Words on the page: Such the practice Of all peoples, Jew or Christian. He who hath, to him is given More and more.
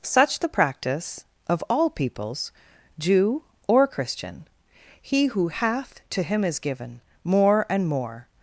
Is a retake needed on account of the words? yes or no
no